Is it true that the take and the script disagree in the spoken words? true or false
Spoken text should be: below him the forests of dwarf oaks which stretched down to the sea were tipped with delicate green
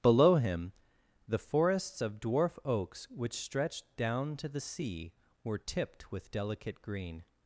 false